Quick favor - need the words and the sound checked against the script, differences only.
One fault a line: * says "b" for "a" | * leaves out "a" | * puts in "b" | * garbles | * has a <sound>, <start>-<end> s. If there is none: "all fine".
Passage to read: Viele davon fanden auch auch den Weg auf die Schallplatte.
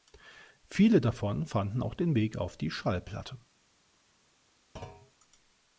* leaves out "auch"
* has a thud, 4.8-5.1 s